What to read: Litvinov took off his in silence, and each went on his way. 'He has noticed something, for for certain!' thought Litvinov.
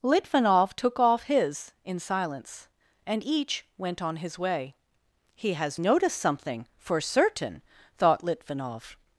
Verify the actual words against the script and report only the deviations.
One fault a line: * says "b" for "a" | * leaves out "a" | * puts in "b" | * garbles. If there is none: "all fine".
* leaves out "for"